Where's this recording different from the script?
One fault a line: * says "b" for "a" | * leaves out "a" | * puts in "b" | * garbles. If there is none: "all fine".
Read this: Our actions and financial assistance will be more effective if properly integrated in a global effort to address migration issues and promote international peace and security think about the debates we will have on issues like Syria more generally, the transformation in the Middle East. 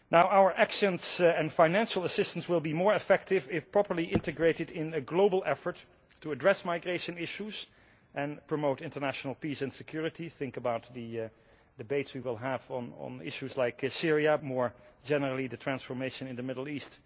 all fine